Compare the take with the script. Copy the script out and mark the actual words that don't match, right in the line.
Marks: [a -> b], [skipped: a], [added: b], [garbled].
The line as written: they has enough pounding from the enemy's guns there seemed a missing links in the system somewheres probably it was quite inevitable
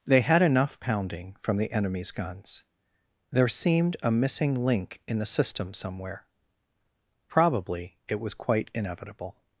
they [has -> had] enough pounding from the enemy's guns there seemed a missing [links -> link] in the system [somewheres -> somewhere] probably it was quite inevitable